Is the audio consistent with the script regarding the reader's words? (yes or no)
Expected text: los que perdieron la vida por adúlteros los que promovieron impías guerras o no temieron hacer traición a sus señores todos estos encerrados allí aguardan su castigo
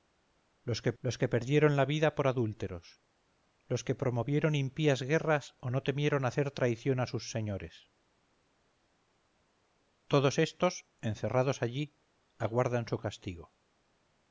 no